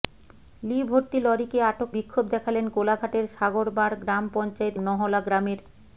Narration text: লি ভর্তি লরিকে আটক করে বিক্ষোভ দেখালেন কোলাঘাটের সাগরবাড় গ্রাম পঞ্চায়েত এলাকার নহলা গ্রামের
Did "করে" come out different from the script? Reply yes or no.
yes